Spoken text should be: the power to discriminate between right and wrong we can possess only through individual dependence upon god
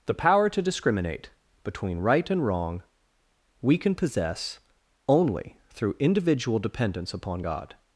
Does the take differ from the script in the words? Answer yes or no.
no